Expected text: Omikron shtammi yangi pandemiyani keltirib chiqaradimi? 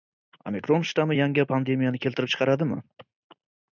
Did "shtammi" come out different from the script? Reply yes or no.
no